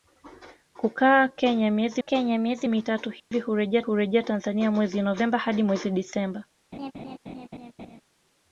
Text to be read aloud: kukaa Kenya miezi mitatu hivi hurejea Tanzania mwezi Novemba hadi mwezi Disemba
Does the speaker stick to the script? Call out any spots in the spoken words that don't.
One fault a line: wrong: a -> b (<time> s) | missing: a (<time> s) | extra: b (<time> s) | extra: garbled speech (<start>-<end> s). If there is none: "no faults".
extra: Kenya miezi (2.0 s)
extra: hurejea (3.8 s)